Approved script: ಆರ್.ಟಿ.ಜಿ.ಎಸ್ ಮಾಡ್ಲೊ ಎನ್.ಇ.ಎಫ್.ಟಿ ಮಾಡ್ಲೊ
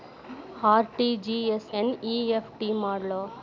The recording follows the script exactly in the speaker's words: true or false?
false